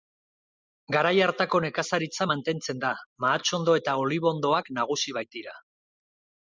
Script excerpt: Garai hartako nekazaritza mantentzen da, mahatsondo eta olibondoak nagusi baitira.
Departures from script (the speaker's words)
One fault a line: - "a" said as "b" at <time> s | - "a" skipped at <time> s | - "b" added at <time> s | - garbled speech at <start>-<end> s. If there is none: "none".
none